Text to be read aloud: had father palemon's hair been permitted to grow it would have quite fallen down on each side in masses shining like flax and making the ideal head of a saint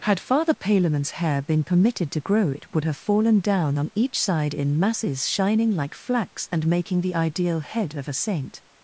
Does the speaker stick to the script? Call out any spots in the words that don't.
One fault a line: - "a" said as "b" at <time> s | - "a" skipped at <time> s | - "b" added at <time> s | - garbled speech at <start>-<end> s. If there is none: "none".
- "quite" skipped at 3.0 s